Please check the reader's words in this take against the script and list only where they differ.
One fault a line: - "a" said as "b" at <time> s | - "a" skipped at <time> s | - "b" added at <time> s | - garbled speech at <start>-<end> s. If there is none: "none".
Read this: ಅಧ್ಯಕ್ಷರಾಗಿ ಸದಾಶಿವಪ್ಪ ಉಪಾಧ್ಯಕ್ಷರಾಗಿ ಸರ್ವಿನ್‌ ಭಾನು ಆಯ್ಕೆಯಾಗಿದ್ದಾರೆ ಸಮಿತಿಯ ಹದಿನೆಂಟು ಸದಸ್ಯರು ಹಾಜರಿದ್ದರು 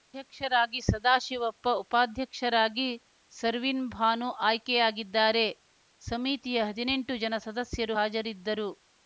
- "ಜನ" added at 7.2 s